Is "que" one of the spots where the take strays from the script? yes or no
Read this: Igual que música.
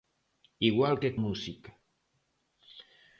no